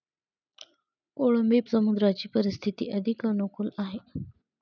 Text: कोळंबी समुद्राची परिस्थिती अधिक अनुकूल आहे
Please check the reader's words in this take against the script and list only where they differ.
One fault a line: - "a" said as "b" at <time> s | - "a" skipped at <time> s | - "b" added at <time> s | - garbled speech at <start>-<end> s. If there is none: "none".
none